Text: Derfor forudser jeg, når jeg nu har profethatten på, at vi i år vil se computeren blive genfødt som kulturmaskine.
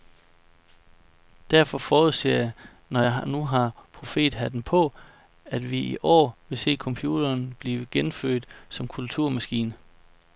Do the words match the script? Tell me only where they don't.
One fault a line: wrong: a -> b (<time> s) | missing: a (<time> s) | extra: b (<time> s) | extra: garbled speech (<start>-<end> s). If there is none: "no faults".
no faults